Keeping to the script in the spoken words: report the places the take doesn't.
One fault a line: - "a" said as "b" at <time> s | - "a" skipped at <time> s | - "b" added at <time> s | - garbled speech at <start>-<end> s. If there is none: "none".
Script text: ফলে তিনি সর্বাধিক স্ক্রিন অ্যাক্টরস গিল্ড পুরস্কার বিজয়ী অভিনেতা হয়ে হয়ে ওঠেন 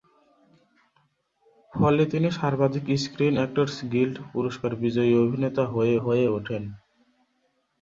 none